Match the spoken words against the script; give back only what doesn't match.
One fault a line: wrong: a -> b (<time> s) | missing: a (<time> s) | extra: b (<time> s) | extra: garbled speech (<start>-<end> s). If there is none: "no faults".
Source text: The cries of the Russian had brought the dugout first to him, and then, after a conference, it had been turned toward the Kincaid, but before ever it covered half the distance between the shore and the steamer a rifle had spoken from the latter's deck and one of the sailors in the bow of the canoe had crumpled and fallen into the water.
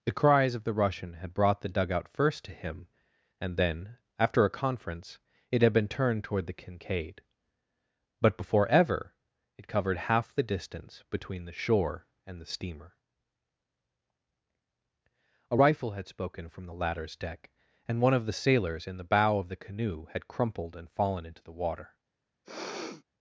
no faults